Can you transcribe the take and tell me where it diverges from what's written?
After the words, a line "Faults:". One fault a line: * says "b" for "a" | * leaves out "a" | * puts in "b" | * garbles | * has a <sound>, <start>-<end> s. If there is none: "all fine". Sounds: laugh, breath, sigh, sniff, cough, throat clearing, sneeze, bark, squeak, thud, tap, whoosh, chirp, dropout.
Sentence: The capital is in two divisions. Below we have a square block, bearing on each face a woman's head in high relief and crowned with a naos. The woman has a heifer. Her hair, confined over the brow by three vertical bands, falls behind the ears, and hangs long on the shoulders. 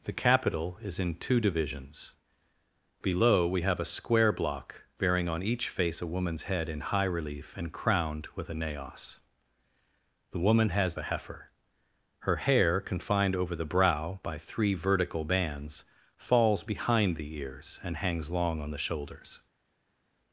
The capital is in two divisions. Below we have a square block, bearing on each face a woman's head in high relief and crowned with a naos. The woman has a heifer. Her hair, confined over the brow by three vertical bands, falls behind the ears, and hangs long on the shoulders.
Faults:
all fine